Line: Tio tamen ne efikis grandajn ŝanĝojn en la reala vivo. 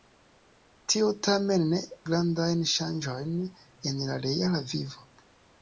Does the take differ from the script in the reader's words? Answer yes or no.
yes